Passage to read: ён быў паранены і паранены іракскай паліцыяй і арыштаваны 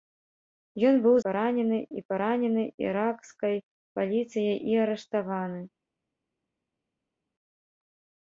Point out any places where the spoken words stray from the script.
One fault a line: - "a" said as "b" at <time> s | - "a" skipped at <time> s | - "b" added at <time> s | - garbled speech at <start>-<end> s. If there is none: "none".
none